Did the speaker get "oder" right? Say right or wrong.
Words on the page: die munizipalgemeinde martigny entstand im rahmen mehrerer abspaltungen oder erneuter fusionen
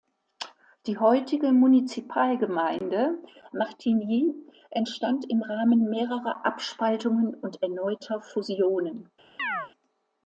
wrong